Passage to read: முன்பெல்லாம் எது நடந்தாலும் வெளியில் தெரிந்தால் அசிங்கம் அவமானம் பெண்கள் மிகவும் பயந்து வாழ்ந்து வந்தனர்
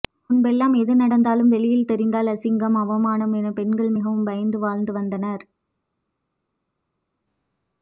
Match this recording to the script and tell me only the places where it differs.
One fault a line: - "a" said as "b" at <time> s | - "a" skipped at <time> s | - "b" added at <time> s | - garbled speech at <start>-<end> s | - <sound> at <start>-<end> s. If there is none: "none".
- "என" added at 3.4 s